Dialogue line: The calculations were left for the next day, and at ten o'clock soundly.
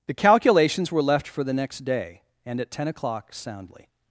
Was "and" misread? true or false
false